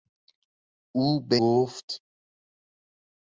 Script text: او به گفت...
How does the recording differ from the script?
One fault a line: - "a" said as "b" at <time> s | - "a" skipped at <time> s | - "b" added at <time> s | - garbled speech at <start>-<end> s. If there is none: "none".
none